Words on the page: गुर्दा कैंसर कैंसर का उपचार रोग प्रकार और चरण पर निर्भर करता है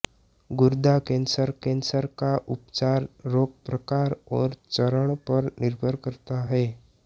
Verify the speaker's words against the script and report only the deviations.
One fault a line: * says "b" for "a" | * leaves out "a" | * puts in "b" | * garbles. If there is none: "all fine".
all fine